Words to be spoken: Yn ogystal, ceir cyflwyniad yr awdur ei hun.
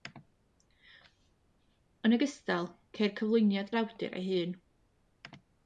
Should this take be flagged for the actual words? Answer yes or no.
no